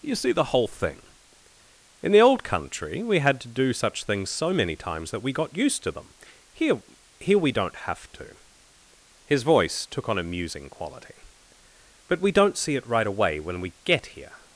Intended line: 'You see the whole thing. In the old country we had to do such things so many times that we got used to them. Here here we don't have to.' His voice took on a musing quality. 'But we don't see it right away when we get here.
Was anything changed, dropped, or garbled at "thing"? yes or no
no